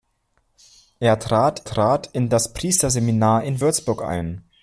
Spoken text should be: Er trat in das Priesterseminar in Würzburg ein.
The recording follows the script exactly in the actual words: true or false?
false